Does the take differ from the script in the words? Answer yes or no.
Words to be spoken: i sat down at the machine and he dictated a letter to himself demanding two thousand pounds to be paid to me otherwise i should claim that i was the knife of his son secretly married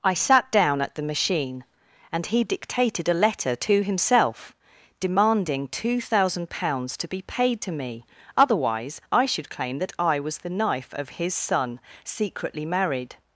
no